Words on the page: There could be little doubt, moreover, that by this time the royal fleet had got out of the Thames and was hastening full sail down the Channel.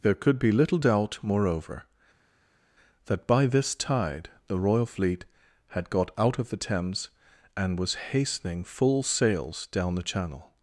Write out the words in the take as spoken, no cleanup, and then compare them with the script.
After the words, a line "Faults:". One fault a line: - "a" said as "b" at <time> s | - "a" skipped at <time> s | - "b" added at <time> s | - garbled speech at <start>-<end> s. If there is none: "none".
There could be little doubt, moreover, that by this tide the royal fleet had got out of the Thames and was hastening full sails down the Channel.
Faults:
- "time" said as "tide" at 3.7 s
- "sail" said as "sails" at 9.0 s